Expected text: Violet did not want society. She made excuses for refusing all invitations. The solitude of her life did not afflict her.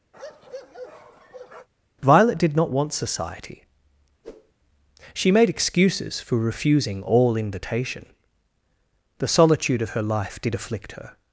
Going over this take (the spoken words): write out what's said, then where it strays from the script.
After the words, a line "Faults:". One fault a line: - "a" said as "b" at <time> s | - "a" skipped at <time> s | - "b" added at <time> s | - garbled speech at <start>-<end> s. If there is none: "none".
Violet did not want society. She made excuses for refusing all invitation. The solitude of her life did afflict her.
Faults:
- "invitations" said as "invitation" at 7.4 s
- "not" skipped at 10.5 s